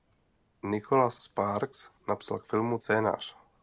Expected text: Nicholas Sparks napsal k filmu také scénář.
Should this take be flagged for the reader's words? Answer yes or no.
yes